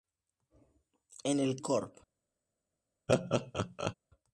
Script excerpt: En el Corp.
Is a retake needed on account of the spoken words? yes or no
no